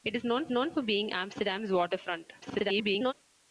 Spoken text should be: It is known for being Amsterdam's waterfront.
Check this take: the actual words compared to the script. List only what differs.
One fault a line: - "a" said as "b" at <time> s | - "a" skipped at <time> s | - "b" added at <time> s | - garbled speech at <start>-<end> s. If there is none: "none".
- "known" added at 0.5 s
- garbled speech at 2.4-3.1 s